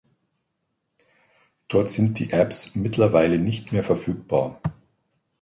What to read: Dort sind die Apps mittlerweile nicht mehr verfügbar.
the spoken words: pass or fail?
pass